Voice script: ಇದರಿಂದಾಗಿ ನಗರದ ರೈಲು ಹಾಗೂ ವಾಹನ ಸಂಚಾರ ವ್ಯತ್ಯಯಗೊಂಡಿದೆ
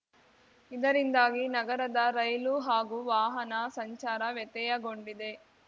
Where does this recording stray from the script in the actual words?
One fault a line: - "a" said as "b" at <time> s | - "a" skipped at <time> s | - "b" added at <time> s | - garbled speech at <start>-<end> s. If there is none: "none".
none